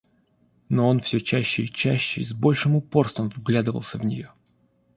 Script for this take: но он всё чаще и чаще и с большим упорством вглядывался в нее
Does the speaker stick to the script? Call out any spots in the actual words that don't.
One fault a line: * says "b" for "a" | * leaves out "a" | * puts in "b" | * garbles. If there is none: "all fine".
all fine